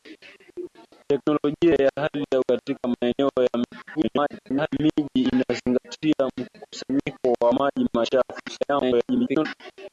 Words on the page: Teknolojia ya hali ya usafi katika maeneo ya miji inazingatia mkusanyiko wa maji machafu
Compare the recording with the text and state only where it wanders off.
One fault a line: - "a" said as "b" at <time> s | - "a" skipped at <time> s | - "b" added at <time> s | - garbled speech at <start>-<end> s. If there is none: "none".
- "usafi" skipped at 2.4 s
- garbled speech at 3.9-4.7 s
- garbled speech at 8.5-9.5 s